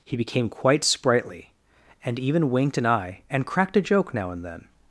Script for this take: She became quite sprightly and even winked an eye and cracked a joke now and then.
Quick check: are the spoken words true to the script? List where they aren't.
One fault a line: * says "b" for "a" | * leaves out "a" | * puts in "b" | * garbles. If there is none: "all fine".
* says "He" for "She"